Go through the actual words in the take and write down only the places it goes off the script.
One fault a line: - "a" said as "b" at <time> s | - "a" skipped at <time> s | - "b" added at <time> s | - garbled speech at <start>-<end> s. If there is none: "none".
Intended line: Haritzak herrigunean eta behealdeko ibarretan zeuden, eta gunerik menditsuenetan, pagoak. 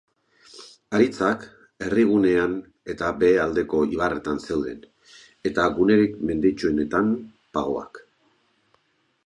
none